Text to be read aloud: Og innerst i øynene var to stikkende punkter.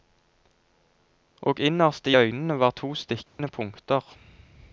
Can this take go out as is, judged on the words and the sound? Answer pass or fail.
fail